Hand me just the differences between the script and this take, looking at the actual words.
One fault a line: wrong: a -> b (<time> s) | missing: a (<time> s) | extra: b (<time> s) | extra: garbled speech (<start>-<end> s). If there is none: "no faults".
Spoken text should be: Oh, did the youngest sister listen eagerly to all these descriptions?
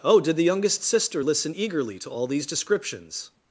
no faults